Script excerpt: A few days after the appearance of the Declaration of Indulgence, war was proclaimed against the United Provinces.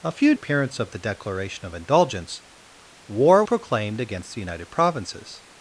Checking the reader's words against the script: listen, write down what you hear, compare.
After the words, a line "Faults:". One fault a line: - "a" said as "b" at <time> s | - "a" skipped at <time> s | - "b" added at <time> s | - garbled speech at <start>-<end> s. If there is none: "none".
A few appearance of the Declaration of Indulgence, war proclaimed against the United Provinces.
Faults:
- "days after the" skipped at 0.3 s
- "was" skipped at 3.4 s